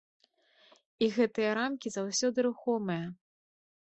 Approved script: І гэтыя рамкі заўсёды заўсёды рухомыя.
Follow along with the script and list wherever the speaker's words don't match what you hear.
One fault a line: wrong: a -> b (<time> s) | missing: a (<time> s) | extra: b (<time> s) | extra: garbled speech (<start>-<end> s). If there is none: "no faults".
missing: заўсёды (2.4 s)